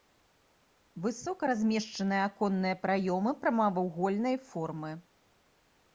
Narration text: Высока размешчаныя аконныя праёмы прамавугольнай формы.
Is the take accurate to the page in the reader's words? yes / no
yes